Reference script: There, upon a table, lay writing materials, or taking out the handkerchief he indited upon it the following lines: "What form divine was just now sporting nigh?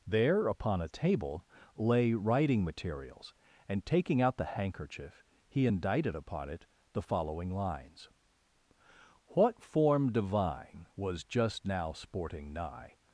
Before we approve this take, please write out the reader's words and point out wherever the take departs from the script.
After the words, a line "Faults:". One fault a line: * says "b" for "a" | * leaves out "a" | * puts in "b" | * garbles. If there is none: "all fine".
There, upon a table, lay writing materials, and taking out the handkerchief he indited upon it the following lines: "What form divine was just now sporting nigh?
Faults:
* says "and" for "or"